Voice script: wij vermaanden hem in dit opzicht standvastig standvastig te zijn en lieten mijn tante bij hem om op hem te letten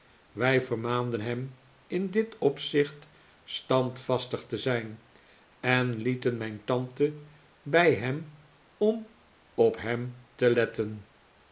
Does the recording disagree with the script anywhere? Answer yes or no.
yes